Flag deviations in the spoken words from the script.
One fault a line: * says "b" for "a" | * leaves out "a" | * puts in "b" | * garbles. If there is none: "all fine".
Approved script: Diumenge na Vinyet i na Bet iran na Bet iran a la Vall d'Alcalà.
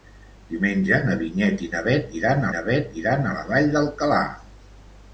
all fine